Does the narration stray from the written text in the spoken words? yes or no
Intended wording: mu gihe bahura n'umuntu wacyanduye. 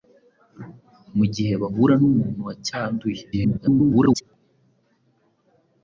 yes